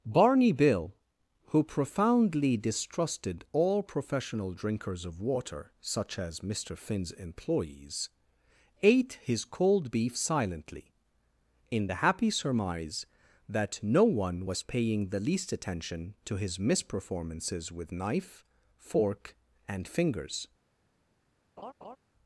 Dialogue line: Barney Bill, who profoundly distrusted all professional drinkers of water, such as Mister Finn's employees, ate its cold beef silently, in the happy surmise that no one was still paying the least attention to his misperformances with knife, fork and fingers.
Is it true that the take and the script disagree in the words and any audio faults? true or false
true